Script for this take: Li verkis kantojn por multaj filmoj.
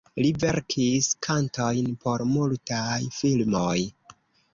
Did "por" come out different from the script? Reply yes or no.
no